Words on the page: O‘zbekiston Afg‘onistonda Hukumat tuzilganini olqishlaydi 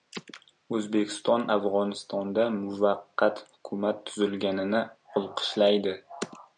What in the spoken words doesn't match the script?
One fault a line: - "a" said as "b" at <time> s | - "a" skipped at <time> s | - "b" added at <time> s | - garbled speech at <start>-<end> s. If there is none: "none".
- "muvaqqat" added at 2.6 s